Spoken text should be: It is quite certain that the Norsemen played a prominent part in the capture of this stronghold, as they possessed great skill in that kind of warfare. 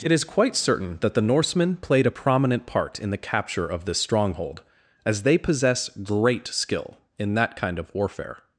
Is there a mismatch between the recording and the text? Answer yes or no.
yes